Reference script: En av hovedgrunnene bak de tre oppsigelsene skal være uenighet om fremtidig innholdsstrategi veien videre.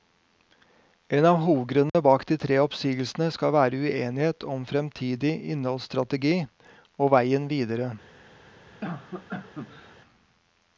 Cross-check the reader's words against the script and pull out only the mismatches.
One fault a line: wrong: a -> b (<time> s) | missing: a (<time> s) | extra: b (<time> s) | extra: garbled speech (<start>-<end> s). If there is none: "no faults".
extra: og (7.0 s)